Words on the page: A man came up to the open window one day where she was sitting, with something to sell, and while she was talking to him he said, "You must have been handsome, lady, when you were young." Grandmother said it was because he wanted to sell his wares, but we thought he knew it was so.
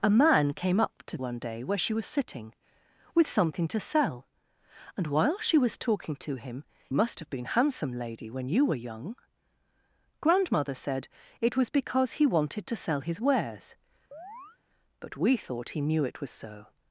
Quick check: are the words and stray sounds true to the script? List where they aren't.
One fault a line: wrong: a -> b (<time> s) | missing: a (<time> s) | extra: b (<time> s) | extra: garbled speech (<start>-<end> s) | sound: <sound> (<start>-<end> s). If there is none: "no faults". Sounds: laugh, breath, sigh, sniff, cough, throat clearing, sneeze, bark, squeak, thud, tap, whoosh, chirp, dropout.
missing: the open window (1.2 s)
missing: he said You (6.6 s)
sound: chirp (14.1-14.6 s)